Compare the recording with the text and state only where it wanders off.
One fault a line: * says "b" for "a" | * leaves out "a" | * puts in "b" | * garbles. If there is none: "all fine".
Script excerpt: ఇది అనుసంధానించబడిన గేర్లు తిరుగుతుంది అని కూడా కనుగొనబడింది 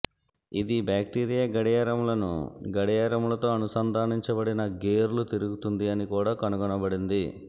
* puts in "బాక్టీరియా గడియారములను గడియారములతో"